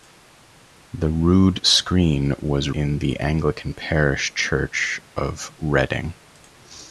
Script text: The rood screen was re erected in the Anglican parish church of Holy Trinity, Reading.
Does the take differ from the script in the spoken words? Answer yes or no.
yes